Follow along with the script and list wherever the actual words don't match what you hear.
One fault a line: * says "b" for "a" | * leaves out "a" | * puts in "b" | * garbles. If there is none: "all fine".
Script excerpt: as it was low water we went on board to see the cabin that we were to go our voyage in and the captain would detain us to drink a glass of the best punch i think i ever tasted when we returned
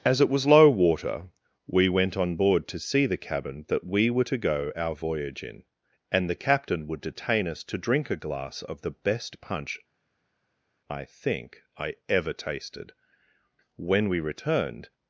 all fine